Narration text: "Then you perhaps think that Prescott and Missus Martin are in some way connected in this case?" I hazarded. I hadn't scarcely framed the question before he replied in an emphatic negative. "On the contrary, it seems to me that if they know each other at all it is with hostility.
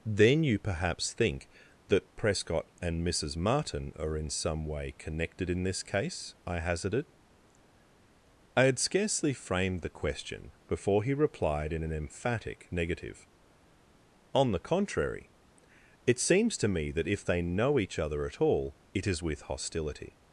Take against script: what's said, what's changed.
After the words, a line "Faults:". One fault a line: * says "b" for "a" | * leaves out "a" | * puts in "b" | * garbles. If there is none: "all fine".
"Then you perhaps think that Prescott and Missus Martin are in some way connected in this case?" I hazarded. I had scarcely framed the question before he replied in an emphatic negative. "On the contrary, it seems to me that if they know each other at all it is with hostility.
Faults:
* says "had" for "hadn't"